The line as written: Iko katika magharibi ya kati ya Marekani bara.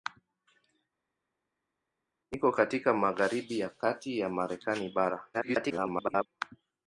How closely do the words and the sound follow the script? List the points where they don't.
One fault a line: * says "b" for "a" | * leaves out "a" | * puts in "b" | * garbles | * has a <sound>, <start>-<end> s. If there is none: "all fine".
* garbles